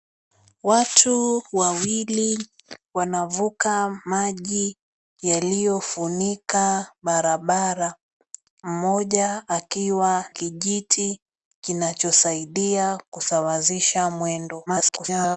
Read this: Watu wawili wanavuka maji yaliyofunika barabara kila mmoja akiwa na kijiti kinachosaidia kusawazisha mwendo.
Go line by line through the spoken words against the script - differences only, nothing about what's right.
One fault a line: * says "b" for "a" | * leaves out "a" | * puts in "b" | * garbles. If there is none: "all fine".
* leaves out "kila"
* leaves out "na"
* garbles